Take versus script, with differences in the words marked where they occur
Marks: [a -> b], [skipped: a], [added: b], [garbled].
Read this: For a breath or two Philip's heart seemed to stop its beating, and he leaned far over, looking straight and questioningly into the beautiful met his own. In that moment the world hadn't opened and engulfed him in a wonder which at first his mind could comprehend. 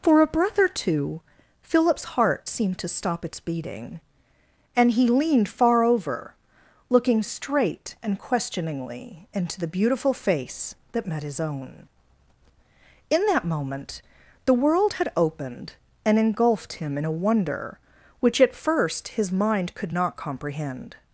For a breath or two Philip's heart seemed to stop its beating, and he leaned far over, looking straight and questioningly into the beautiful [added: face that] met his own. In that moment the world [hadn't -> had] opened and engulfed him in a wonder which at first his mind could [added: not] comprehend.